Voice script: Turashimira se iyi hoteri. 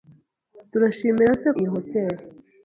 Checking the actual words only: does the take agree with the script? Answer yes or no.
yes